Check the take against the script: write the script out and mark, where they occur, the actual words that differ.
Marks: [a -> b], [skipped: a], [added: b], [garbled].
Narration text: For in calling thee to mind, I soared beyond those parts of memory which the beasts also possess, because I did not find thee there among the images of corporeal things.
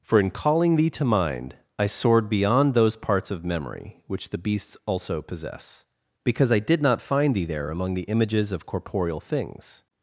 For in calling thee to mind, I soared beyond those parts of memory which the beasts also possess, because I did not find thee there among the images of corporeal things.